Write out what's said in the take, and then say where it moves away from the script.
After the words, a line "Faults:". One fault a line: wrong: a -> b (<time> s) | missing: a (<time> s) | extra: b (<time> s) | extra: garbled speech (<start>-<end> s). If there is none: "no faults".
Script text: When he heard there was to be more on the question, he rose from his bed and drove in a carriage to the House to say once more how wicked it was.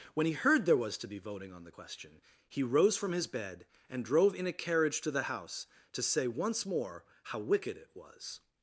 When he heard there was to be voting on the question, he rose from his bed and drove in a carriage to the House to say once more how wicked it was.
Faults:
wrong: more -> voting (1.2 s)